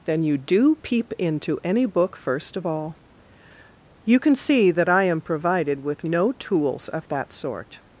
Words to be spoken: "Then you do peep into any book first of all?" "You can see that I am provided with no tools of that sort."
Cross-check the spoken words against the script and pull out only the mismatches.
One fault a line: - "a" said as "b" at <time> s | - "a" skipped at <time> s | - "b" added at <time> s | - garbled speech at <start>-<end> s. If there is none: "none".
none